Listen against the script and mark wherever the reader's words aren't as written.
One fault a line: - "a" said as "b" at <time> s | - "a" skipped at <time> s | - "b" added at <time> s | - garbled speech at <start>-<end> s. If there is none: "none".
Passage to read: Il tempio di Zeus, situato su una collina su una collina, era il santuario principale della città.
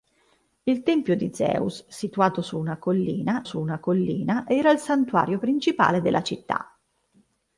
none